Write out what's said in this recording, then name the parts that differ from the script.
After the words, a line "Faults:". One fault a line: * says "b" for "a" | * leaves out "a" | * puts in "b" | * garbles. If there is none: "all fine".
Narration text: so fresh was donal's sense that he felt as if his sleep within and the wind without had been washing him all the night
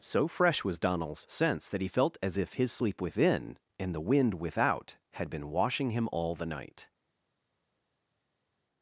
so fresh was donal's sense that he felt as if his sleep within and the wind without had been washing him all the night
Faults:
all fine